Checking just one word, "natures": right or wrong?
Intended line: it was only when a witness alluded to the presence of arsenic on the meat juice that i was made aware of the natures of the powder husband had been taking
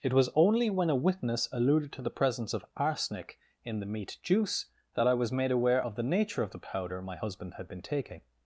wrong